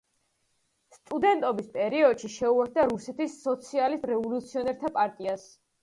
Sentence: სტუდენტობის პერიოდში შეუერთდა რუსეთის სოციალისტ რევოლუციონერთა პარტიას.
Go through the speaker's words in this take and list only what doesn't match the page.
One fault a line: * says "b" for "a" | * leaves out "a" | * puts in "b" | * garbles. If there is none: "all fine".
all fine